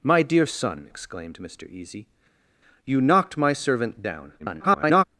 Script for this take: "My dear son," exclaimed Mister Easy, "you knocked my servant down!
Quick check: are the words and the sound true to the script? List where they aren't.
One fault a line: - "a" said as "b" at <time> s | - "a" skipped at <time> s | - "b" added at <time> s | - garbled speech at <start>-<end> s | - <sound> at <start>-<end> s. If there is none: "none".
- garbled speech at 4.4-5.0 s